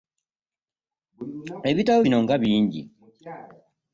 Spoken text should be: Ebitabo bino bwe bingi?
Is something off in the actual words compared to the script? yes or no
yes